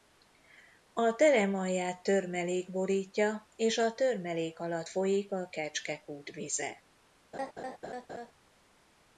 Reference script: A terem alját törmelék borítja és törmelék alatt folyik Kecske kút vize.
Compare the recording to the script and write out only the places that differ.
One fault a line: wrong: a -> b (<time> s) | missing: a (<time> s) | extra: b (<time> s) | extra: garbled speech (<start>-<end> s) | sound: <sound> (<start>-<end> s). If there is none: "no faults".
extra: a (3.8 s)
extra: a (5.3 s)
sound: laugh (7.3-8.3 s)